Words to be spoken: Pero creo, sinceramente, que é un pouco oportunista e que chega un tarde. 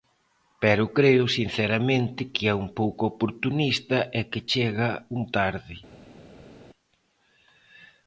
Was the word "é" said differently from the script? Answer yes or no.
no